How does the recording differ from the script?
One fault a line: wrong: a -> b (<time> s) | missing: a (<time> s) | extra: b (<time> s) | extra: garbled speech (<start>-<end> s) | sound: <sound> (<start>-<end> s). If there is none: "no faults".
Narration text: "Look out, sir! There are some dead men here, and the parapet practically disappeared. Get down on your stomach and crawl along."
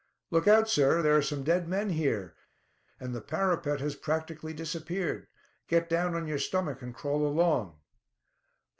extra: has (3.8 s)